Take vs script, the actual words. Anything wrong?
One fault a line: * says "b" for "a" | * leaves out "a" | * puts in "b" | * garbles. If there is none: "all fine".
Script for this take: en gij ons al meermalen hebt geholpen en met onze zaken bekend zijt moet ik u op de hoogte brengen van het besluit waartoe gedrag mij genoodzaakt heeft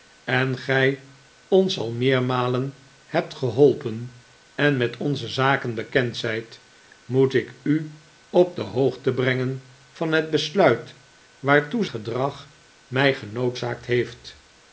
all fine